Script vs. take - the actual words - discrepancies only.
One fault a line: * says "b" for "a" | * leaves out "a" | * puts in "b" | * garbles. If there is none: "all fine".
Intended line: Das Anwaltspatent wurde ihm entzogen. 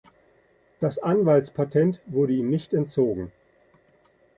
* puts in "nicht"